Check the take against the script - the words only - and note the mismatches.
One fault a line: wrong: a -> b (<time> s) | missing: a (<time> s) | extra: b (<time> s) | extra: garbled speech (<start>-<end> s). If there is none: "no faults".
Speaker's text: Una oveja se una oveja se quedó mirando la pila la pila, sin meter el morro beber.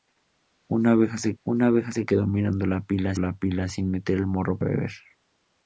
no faults